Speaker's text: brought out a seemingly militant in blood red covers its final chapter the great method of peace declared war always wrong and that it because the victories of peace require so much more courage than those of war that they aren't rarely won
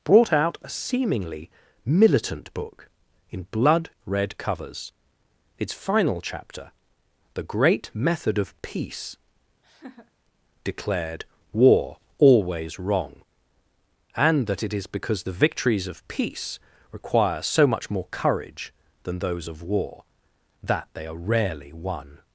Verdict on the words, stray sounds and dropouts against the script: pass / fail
fail